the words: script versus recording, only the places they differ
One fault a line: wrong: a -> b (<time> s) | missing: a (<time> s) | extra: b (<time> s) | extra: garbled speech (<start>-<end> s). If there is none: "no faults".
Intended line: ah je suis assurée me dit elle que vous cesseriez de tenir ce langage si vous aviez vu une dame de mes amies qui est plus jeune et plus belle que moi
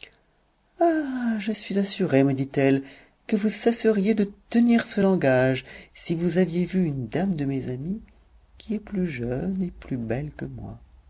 no faults